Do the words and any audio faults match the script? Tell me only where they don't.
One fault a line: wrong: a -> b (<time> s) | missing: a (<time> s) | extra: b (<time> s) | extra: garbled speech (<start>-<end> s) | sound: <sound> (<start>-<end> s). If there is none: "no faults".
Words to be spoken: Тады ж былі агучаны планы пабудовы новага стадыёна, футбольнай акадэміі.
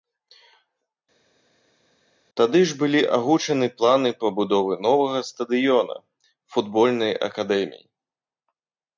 no faults